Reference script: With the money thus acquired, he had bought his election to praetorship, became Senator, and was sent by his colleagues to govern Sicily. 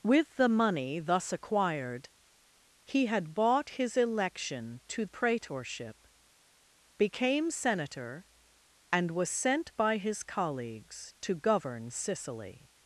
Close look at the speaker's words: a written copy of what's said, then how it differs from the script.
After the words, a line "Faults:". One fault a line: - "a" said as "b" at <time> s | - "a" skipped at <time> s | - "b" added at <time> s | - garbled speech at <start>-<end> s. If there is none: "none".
With the money thus acquired, he had bought his election to praetorship, became Senator, and was sent by his colleagues to govern Sicily.
Faults:
none